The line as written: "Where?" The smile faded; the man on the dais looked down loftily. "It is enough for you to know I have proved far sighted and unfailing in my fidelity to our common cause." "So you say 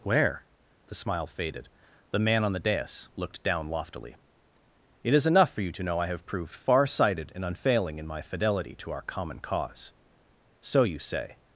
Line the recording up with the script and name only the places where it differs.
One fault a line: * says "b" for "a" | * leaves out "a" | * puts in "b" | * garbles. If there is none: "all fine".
all fine